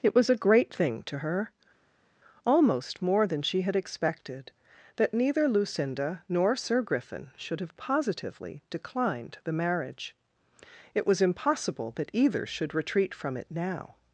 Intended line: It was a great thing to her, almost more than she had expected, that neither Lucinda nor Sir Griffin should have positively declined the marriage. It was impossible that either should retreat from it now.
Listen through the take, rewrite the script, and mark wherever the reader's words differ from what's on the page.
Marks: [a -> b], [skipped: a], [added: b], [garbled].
It was a great thing to her, almost more than she had expected, that neither Lucinda nor Sir Griffin should have positively declined the marriage. It was impossible that either should retreat from it now.